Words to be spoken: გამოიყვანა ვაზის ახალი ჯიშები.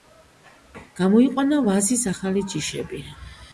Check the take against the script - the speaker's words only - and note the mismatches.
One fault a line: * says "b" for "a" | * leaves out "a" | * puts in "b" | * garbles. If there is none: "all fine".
all fine